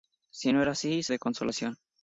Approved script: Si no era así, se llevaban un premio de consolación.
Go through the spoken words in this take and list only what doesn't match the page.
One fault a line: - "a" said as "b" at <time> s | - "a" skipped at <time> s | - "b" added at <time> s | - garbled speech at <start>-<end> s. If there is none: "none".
- "llevaban un premio" skipped at 1.1 s